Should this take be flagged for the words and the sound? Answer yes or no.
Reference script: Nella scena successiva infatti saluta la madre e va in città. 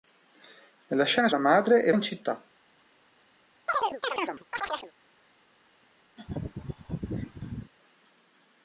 yes